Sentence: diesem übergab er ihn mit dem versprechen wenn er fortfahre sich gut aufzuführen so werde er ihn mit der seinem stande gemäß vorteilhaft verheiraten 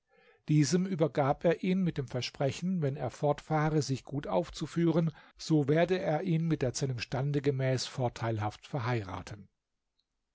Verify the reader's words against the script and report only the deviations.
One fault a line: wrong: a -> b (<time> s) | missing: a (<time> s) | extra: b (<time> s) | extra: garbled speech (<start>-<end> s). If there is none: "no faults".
no faults